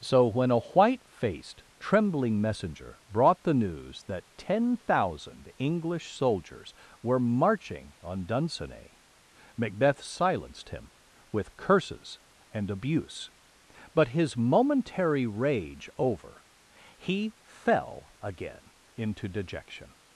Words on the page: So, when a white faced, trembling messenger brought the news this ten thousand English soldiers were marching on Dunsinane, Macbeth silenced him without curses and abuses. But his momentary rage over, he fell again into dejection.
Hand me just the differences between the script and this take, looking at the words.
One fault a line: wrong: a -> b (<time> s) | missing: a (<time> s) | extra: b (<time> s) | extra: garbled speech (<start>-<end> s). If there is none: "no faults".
wrong: this -> that (4.0 s)
wrong: without -> with (11.3 s)
wrong: abuses -> abuse (12.7 s)